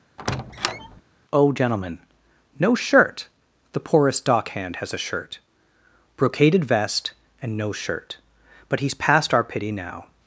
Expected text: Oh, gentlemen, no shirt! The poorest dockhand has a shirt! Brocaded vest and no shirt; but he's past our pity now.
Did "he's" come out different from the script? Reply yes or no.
no